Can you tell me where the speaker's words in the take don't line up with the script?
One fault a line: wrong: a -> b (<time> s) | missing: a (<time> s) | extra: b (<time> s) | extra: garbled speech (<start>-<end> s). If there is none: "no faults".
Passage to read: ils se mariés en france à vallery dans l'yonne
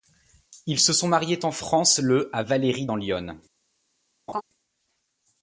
extra: sont (0.9 s)
extra: le (2.0 s)